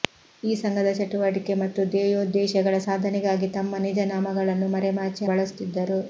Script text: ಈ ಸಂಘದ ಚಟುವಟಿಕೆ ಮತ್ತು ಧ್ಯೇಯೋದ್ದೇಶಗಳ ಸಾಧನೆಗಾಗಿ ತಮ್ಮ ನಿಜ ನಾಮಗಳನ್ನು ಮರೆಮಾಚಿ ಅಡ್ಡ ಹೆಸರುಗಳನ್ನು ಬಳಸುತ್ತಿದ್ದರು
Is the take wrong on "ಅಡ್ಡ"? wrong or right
wrong